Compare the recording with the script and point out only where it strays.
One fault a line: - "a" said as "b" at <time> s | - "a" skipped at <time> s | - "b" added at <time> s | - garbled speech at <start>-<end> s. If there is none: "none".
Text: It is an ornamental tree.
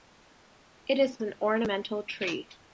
none